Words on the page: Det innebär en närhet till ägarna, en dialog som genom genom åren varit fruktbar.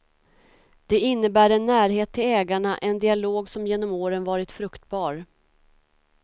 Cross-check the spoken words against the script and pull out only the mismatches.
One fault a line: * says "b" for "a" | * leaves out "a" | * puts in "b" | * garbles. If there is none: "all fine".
* leaves out "genom"